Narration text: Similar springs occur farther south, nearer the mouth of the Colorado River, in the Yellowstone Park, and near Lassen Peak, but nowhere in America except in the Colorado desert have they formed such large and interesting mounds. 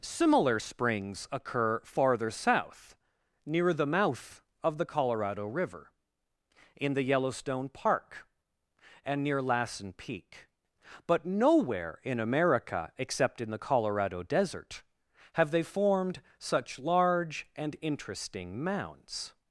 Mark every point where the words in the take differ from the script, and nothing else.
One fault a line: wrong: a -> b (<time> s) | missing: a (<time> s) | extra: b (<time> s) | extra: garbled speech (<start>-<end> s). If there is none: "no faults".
wrong: nearer -> near (3.5 s)